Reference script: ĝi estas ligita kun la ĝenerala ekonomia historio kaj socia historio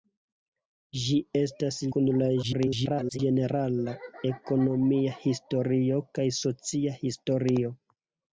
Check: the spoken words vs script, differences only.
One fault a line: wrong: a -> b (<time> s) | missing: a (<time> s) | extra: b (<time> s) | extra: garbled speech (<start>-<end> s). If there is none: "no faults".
missing: ligita (1.8 s)
extra: garbled speech (2.4-3.2 s)